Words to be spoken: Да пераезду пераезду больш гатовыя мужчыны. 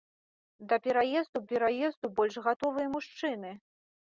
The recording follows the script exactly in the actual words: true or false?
true